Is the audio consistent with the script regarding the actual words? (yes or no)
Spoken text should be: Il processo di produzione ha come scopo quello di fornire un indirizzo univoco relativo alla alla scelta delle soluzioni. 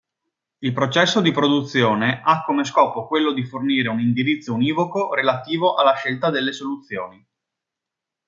no